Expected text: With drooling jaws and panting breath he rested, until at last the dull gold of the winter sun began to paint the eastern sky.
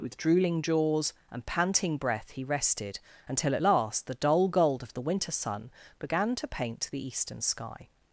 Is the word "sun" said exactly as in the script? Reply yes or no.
yes